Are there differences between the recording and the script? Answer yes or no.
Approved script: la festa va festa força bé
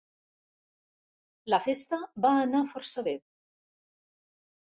yes